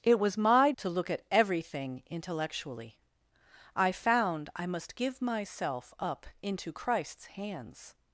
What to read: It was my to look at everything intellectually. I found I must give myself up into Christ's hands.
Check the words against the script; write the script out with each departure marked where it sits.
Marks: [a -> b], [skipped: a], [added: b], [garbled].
It was my to look at everything intellectually. I found I must give myself up into Christ's hands.